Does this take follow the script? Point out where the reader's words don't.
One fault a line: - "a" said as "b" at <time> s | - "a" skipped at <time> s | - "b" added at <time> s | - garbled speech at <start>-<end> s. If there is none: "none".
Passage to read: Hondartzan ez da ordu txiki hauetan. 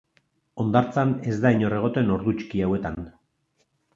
- "inor egoten" added at 1.5 s